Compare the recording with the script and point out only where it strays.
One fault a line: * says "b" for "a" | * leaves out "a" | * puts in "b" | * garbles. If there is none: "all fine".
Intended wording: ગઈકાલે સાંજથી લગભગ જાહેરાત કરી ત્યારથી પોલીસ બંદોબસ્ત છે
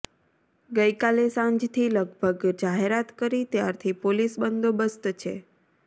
all fine